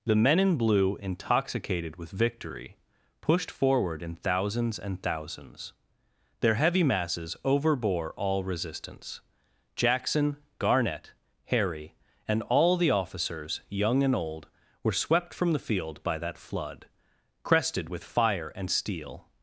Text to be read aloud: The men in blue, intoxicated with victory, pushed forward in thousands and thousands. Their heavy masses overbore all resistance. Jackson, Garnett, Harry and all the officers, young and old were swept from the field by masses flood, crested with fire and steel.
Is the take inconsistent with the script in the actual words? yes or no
yes